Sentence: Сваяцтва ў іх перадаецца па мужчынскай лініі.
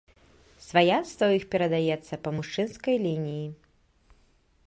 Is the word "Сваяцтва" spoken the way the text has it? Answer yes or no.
yes